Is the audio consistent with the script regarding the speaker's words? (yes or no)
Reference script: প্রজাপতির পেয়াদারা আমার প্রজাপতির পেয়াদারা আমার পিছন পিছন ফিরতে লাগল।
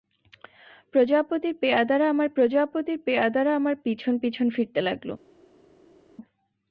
yes